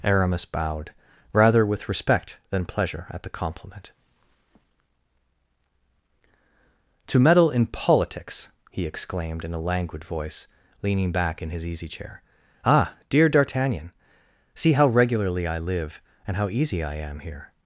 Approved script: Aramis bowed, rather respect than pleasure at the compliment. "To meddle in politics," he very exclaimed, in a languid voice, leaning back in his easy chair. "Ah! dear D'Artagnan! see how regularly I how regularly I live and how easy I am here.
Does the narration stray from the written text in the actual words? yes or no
yes